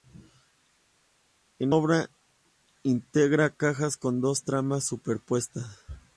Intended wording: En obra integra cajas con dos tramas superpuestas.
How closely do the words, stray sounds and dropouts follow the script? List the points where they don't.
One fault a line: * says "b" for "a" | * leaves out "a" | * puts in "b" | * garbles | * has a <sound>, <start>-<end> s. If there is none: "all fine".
all fine